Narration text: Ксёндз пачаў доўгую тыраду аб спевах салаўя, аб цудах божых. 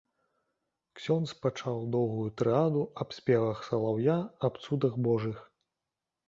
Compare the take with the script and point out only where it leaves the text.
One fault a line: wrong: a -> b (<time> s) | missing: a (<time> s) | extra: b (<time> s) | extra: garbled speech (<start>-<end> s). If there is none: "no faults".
no faults